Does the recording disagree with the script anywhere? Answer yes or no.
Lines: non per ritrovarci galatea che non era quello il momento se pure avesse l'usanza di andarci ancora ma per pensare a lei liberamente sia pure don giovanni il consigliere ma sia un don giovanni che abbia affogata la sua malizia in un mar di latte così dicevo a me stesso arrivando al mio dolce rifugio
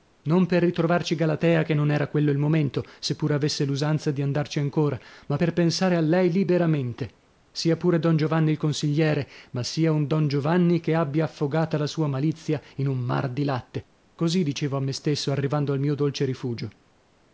no